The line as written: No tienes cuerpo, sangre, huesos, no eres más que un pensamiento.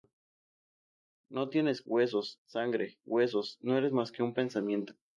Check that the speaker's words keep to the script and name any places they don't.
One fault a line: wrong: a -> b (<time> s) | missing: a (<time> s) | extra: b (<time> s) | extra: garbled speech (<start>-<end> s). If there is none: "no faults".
wrong: cuerpo -> huesos (1.9 s)